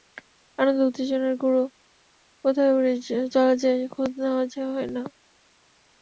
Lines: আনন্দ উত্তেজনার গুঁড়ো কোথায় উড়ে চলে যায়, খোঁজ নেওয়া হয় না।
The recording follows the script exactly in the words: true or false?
true